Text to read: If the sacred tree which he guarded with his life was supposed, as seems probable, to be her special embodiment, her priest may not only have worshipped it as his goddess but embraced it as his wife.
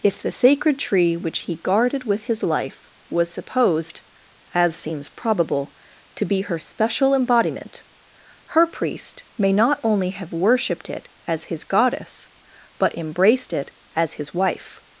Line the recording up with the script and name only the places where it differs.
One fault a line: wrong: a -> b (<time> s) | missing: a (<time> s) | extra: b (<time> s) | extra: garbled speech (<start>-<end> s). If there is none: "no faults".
no faults